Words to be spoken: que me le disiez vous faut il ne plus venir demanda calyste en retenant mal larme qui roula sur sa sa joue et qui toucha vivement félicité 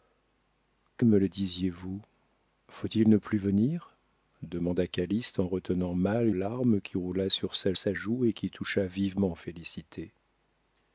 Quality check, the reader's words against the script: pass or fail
pass